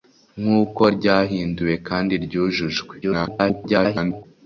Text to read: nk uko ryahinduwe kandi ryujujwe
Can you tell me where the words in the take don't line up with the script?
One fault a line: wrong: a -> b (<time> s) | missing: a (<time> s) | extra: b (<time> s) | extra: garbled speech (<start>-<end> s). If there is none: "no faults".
extra: garbled speech (3.0-4.2 s)